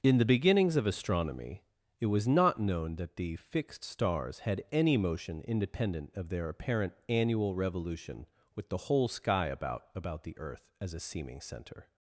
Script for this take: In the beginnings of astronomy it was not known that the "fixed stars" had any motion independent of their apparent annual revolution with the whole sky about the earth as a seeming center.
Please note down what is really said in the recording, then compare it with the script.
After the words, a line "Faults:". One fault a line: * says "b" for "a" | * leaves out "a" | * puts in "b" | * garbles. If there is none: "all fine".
In the beginnings of astronomy it was not known that the "fixed stars" had any motion independent of their apparent annual revolution with the whole sky about about the earth as a seeming center.
Faults:
* puts in "about"